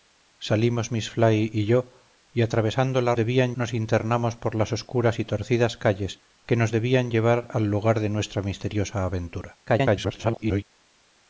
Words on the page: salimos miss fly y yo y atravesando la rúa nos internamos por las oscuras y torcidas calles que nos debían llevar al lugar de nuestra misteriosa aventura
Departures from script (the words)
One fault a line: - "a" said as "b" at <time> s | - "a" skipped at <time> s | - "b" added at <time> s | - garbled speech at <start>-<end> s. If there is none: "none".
- "rúa" said as "debían" at 3.1 s
- garbled speech at 9.7-10.6 s